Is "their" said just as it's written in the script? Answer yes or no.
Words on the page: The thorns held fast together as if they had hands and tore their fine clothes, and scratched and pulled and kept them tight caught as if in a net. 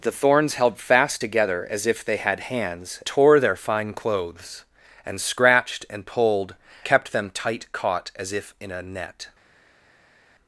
yes